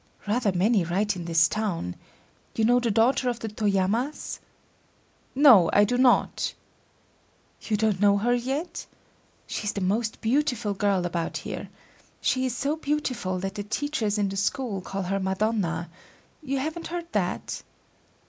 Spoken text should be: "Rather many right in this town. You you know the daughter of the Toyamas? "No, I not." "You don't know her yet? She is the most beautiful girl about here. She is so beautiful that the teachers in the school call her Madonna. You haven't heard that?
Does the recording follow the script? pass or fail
fail